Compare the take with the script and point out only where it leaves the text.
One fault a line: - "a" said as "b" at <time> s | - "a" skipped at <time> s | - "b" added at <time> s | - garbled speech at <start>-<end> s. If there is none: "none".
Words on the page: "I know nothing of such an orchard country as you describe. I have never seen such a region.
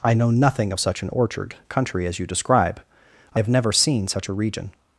none